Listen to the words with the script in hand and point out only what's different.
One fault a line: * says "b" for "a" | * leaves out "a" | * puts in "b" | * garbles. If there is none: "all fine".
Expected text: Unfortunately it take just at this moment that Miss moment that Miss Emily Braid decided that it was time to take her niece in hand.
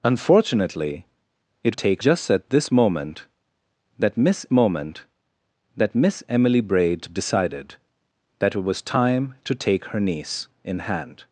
all fine